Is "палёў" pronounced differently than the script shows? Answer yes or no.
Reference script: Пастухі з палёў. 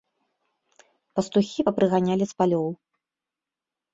no